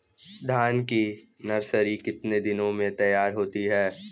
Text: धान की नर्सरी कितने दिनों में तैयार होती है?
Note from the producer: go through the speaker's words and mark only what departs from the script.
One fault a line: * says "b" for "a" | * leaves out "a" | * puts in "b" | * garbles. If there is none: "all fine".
all fine